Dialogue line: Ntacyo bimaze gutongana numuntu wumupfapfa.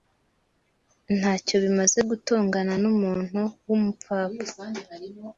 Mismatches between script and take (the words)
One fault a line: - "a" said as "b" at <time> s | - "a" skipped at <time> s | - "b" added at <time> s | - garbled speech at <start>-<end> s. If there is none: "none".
none